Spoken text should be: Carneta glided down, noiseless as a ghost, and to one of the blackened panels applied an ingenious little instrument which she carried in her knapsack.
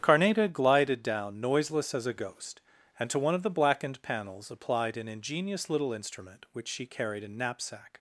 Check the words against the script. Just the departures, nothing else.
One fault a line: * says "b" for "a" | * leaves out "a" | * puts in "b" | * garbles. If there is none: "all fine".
* leaves out "her"